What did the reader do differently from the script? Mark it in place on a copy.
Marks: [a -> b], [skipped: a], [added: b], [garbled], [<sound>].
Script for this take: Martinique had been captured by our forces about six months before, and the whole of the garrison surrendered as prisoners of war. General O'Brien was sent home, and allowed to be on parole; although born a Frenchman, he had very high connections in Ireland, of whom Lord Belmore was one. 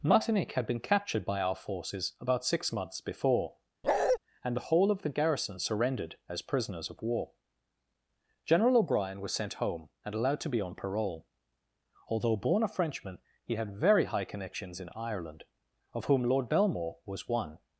Martinique had been captured by our forces about six months before, [bark] and the whole of the garrison surrendered as prisoners of war. General O'Brien was sent home, and allowed to be on parole; although born a Frenchman, he had very high connections in Ireland, of whom Lord Belmore was one.